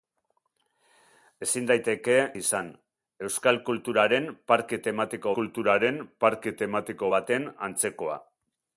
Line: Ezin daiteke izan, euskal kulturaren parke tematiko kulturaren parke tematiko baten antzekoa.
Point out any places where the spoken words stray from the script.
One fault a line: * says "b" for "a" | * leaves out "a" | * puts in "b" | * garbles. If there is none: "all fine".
all fine